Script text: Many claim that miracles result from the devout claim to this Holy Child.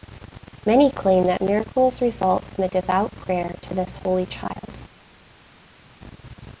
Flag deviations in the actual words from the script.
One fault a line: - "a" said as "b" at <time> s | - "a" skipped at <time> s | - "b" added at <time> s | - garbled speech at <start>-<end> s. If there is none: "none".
- "claim" said as "prayer" at 3.1 s